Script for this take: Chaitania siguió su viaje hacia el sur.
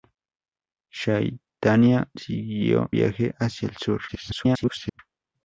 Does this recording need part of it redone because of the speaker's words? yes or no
yes